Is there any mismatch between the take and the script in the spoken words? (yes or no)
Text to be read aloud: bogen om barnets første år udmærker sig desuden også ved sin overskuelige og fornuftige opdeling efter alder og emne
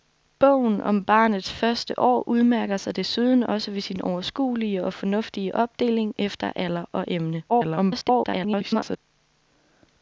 yes